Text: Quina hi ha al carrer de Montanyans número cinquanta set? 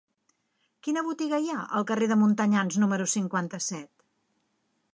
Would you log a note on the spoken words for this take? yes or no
yes